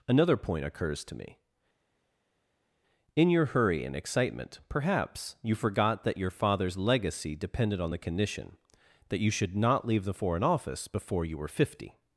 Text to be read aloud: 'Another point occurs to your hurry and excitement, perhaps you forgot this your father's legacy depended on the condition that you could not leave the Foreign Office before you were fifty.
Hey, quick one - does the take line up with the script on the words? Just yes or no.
no